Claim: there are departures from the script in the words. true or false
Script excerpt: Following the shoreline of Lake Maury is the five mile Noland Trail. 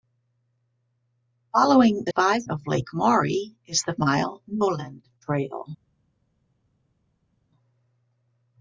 true